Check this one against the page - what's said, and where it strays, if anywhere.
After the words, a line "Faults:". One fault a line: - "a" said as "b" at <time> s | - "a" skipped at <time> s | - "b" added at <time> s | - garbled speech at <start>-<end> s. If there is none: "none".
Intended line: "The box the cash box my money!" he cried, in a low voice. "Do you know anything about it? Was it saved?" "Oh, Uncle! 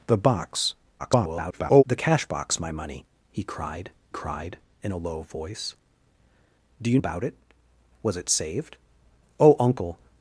"The box [garbled] the cash box my money!" he cried cried, in a low voice. "Do you about it? Was it saved?" "Oh, Uncle!
Faults:
- garbled speech at 1.0-1.8 s
- "cried" added at 4.1 s
- "know anything" skipped at 7.0 s